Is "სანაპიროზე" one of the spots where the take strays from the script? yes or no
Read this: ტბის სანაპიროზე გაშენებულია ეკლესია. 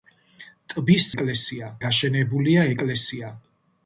yes